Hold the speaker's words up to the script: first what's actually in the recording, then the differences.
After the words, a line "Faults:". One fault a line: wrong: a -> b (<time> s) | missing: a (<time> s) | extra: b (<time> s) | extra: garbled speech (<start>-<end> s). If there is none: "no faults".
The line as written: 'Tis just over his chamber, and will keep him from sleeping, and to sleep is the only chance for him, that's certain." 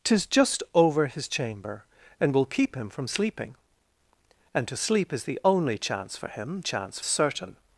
'Tis just over his chamber, and will keep him from sleeping, and to sleep is the only chance for him, chance certain."
Faults:
wrong: that's -> chance (6.6 s)